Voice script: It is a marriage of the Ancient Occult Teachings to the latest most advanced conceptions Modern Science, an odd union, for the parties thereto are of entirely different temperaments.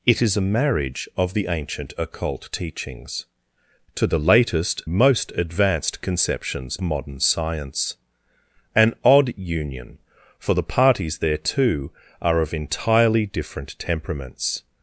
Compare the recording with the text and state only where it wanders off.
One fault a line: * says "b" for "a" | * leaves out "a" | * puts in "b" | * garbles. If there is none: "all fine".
all fine